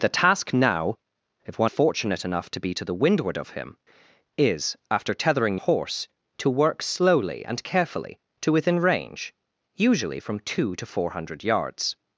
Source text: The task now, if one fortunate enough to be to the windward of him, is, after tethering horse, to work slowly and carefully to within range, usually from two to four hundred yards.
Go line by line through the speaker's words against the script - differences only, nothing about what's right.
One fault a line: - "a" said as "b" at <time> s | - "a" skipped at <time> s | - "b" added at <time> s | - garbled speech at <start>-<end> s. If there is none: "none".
none